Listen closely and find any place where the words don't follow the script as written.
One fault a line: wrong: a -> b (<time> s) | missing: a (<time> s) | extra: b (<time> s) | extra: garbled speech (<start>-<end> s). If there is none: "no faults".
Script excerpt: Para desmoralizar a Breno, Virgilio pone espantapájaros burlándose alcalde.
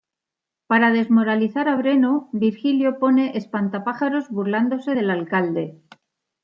extra: del (4.9 s)